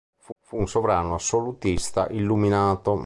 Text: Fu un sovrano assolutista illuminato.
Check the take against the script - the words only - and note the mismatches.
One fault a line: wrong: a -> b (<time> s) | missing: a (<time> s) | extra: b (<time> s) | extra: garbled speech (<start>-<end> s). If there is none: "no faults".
extra: fu (0.4 s)